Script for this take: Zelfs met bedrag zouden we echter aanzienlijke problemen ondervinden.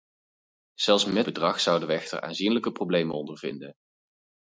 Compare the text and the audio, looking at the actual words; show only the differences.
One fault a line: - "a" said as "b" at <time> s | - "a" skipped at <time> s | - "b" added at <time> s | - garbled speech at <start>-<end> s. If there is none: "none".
none